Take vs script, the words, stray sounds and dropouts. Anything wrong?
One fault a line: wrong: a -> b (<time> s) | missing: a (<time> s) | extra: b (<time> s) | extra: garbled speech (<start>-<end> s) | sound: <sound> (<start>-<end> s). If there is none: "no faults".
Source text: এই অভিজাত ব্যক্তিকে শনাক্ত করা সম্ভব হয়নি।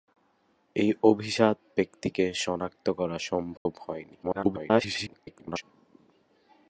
sound: dropout (3.6-3.7 s)
extra: garbled speech (4.2-5.6 s)